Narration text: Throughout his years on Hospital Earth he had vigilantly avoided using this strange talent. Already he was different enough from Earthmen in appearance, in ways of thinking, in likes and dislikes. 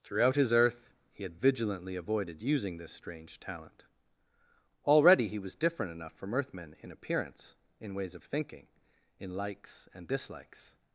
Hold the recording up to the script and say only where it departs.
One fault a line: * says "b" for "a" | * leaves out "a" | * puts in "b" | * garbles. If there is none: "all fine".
* leaves out "years on Hospital"